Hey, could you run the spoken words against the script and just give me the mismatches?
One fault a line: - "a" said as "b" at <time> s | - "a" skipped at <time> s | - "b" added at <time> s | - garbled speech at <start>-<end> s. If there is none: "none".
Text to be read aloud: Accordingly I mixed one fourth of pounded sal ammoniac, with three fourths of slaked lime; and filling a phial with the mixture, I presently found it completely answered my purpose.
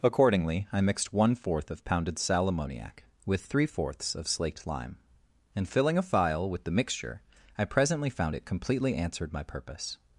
none